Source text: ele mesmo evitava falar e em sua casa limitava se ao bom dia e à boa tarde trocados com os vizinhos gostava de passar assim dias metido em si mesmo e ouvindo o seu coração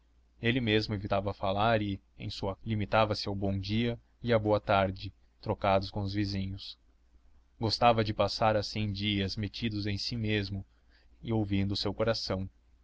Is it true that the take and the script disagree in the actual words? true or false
true